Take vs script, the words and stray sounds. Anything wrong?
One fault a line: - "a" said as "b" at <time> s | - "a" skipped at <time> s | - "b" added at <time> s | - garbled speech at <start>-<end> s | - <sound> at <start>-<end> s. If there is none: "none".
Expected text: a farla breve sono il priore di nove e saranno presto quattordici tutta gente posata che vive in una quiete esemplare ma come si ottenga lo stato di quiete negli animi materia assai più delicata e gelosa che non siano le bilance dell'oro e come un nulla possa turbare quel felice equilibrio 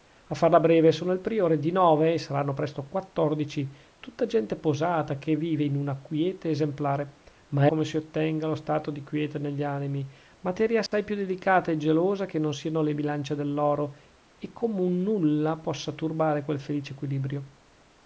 - dropout at 10.9-10.9 s